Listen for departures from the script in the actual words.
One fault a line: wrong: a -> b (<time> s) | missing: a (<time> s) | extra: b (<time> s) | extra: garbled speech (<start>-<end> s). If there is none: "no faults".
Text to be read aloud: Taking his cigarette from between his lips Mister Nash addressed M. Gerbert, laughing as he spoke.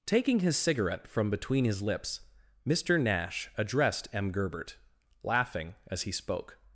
no faults